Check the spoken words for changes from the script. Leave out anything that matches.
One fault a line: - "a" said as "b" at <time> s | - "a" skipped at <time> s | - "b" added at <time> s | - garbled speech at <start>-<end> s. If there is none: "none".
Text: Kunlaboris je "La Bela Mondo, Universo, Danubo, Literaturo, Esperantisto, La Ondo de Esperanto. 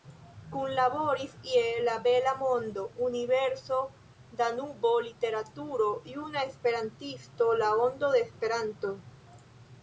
- "Juna" added at 6.1 s